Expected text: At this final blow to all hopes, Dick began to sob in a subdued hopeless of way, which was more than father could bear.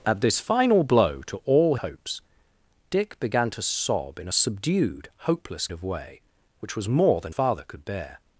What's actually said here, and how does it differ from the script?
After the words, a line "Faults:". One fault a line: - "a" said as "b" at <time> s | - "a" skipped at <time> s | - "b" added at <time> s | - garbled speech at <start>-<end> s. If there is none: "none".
At this final blow to all hopes, Dick began to sob in a subdued hopeless of way, which was more than father could bear.
Faults:
none